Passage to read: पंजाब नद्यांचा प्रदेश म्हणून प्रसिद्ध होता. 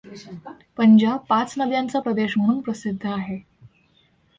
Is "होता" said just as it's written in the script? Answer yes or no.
no